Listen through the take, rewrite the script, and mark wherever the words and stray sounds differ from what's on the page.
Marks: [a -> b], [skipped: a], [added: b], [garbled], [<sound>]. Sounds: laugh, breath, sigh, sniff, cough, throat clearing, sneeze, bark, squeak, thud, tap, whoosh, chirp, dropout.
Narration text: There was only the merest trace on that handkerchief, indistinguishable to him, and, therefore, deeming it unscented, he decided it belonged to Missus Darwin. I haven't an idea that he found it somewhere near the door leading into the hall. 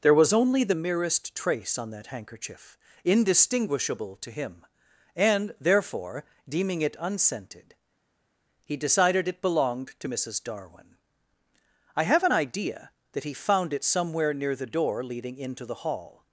There was only the merest trace on that handkerchief, indistinguishable to him, and, therefore, deeming it unscented, he decided it belonged to Missus Darwin. I [haven't -> have] an idea that he found it somewhere near the door leading into the hall.